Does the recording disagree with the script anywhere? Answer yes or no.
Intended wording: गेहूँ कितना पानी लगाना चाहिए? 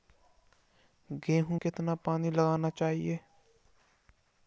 no